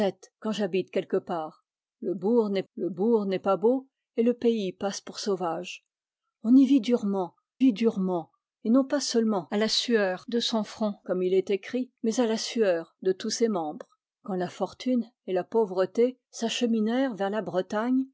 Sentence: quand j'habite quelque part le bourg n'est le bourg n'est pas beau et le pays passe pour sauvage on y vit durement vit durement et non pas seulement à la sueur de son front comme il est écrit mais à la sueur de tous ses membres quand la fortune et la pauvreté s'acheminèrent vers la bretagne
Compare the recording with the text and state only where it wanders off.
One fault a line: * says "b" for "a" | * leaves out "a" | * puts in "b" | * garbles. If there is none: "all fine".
all fine